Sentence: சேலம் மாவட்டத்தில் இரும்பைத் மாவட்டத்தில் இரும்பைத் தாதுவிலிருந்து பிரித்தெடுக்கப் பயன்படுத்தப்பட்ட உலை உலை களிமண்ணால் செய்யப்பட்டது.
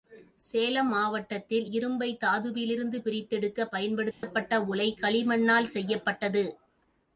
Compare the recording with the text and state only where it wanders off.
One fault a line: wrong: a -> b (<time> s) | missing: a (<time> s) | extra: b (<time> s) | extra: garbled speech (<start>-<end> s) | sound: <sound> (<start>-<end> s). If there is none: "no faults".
missing: மாவட்டத்தில் இரும்பைத் (2.2 s)
sound: dropout (4.1-4.2 s)
missing: உலை (4.9 s)